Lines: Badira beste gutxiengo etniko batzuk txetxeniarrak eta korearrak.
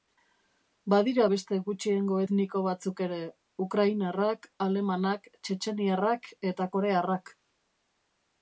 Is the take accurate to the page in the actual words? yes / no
no